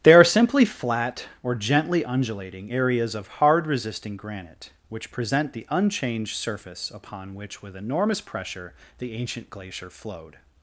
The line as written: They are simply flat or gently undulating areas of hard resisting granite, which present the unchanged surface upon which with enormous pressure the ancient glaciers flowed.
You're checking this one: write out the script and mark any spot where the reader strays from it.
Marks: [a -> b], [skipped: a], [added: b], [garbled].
They are simply flat or gently undulating areas of hard resisting granite, which present the unchanged surface upon which with enormous pressure the ancient [glaciers -> glacier] flowed.